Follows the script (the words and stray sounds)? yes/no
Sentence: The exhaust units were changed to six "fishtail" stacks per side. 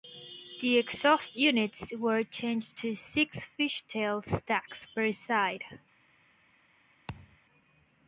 no